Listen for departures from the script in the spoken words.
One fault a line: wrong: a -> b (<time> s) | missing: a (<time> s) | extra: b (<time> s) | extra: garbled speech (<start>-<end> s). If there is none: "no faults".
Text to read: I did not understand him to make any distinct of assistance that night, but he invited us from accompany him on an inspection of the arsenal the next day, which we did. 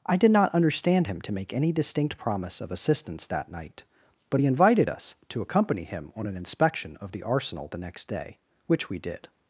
extra: promise (2.2 s)
wrong: from -> to (5.3 s)